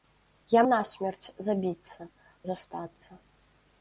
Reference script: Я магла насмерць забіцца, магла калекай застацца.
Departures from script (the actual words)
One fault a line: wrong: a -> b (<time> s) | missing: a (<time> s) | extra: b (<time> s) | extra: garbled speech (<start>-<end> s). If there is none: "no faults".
missing: магла (0.6 s)
missing: магла калекай (2.1 s)